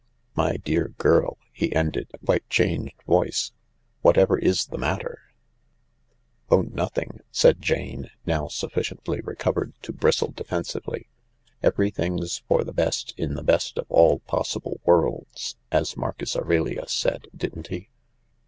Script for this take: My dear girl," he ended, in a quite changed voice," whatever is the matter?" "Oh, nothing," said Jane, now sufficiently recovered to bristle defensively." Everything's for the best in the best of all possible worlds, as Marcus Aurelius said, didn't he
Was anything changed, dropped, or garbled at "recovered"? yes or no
no